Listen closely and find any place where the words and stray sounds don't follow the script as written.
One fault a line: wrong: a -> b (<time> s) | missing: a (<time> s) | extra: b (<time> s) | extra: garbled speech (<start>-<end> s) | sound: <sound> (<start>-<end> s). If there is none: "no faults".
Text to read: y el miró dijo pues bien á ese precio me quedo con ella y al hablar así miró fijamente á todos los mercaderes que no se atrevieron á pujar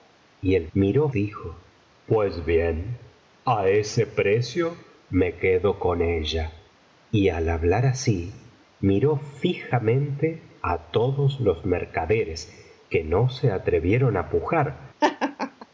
sound: laugh (15.0-15.7 s)